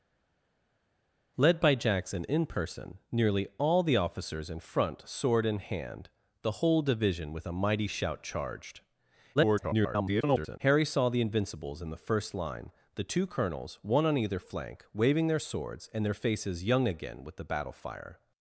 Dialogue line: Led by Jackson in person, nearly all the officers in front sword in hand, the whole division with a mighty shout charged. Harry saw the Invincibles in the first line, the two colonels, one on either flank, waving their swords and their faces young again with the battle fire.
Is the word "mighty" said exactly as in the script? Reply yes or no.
yes